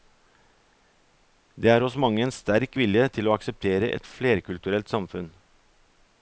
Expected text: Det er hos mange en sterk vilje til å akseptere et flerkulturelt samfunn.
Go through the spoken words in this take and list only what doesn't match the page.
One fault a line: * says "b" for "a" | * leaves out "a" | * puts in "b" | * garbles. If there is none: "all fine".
all fine